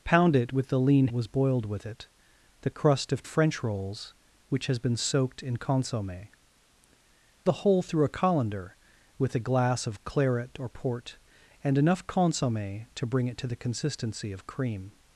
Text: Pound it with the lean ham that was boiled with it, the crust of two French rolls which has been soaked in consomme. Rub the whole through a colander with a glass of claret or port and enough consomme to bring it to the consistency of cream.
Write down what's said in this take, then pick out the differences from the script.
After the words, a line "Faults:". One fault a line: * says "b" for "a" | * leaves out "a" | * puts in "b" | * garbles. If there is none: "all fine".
Pound it with the lean was boiled with it, the crust of French rolls which has been soaked in consomme. The whole through a colander with a glass of claret or port and enough consomme to bring it to the consistency of cream.
Faults:
* leaves out "ham that"
* leaves out "two"
* leaves out "Rub"